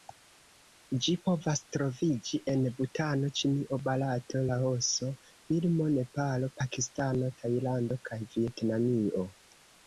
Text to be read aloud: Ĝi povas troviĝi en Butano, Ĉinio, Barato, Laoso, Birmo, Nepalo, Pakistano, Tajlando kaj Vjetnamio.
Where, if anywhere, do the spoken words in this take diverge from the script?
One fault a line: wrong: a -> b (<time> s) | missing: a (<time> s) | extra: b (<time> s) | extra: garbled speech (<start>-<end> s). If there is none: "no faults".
no faults